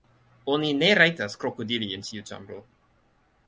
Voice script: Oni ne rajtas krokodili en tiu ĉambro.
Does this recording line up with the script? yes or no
yes